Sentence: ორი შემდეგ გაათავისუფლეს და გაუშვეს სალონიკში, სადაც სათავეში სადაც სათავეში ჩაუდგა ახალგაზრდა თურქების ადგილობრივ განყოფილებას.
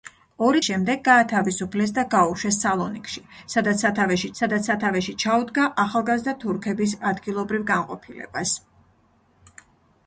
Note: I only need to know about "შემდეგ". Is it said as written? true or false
true